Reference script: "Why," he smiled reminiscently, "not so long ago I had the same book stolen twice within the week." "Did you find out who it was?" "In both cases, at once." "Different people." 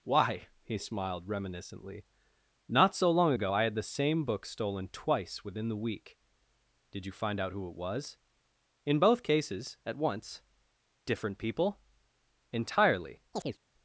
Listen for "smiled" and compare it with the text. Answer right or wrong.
right